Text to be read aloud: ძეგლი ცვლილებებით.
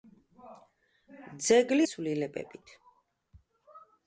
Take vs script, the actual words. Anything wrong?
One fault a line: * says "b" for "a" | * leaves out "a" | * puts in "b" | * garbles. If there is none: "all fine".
all fine